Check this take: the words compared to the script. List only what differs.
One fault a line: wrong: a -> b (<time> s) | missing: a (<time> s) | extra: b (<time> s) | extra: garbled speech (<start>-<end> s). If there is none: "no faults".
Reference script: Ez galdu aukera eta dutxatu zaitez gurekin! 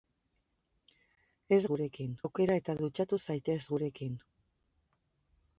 wrong: galdu -> gurekin (1.7 s)